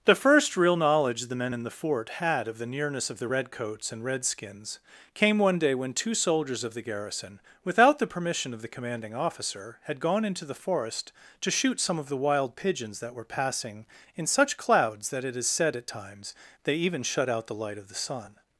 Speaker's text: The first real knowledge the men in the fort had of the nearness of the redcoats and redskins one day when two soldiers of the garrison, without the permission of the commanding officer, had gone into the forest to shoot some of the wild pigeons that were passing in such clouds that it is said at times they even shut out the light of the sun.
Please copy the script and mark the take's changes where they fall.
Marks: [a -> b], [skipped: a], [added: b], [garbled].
The first real knowledge the men in the fort had of the nearness of the redcoats and redskins [added: came] one day when two soldiers of the garrison, without the permission of the commanding officer, had gone into the forest to shoot some of the wild pigeons that were passing in such clouds that it is said at times they even shut out the light of the sun.